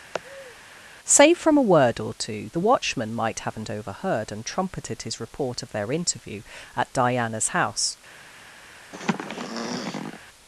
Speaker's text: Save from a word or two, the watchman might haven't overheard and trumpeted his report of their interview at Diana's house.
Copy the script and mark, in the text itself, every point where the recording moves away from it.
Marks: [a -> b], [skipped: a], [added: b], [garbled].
Save from a word or two, the watchman might haven't overheard and trumpeted his report of their interview at Diana's house.